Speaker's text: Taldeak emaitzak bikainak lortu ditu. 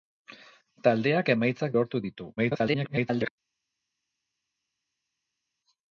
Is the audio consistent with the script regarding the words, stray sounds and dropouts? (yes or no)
no